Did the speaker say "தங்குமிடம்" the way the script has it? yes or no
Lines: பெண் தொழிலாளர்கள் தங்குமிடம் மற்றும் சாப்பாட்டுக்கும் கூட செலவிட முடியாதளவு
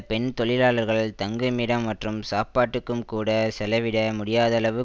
yes